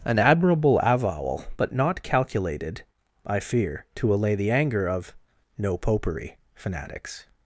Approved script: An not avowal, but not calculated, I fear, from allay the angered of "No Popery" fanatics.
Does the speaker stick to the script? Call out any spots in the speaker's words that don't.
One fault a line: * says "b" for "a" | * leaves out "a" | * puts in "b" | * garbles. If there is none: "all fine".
* says "admirable" for "not"
* says "to" for "from"
* says "anger" for "angered"